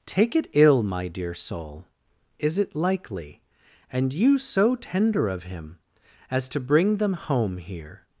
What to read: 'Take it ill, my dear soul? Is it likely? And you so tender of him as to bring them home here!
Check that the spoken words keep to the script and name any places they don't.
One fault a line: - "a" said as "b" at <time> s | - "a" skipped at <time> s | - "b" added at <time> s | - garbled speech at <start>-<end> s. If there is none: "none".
none